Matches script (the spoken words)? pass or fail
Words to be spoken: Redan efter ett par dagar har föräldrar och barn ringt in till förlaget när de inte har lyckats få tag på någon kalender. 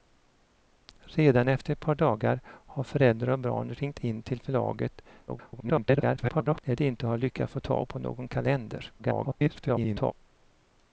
fail